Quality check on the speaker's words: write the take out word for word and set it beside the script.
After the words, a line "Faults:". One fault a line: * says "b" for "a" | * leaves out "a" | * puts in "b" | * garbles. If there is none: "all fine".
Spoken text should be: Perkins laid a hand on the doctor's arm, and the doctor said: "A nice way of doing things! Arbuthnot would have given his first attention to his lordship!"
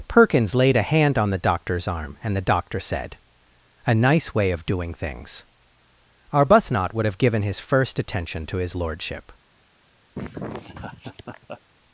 Perkins laid a hand on the doctor's arm, and the doctor said: "A nice way of doing things! Arbuthnot would have given his first attention to his lordship!"
Faults:
all fine